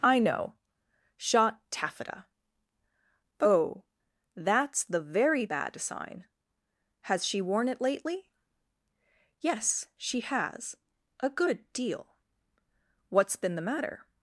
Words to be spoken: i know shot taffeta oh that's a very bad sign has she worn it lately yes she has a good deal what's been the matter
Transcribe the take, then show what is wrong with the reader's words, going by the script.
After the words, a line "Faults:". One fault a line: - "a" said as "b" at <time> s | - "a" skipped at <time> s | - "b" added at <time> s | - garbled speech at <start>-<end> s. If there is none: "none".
i know shot taffeta oh that's the very bad sign has she worn it lately yes she has a good deal what's been the matter
Faults:
- "a" said as "the" at 4.8 s